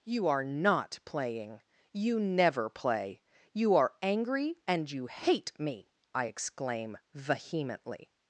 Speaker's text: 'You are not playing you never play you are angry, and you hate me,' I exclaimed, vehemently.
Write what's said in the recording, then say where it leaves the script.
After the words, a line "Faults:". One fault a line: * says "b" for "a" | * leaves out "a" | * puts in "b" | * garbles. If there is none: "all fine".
'You are not playing you never play you are angry, and you hate me,' I exclaim, vehemently.
Faults:
* says "exclaim" for "exclaimed"